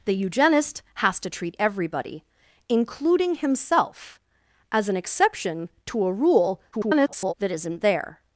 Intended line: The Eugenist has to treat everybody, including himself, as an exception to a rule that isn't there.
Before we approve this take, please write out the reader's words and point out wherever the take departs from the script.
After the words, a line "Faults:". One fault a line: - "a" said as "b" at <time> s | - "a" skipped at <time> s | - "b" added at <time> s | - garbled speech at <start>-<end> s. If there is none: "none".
The Eugenist has to treat everybody, including himself, as an exception to a rule [garbled] that isn't there.
Faults:
- garbled speech at 6.7-7.3 s